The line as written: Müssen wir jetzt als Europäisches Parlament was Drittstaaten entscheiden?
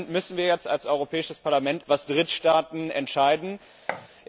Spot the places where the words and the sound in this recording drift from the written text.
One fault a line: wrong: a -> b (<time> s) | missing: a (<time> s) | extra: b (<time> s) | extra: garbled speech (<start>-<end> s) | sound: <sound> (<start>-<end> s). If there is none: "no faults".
sound: thud (3.9-4.1 s)